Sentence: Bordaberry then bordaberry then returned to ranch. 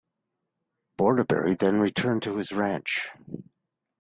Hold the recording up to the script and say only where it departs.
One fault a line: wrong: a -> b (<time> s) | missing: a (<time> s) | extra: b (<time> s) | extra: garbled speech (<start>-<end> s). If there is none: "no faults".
missing: bordaberry then (1.8 s)
extra: his (2.4 s)